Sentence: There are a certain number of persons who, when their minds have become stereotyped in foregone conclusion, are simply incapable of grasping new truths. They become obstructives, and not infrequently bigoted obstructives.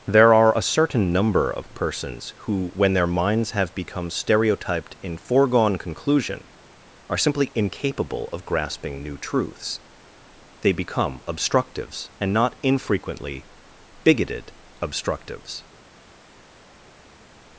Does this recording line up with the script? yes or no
yes